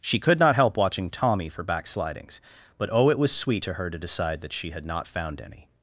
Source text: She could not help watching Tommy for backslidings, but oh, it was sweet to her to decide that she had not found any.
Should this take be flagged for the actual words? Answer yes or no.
no